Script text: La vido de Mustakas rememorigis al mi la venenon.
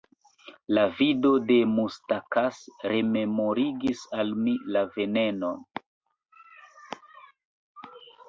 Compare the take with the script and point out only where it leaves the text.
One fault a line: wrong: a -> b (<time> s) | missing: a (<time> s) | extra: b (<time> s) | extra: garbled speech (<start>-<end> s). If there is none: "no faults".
no faults